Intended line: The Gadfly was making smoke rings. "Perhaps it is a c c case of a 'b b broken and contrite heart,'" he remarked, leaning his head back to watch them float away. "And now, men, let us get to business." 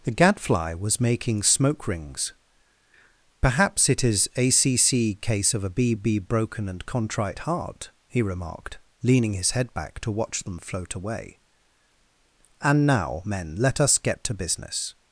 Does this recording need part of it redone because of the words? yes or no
no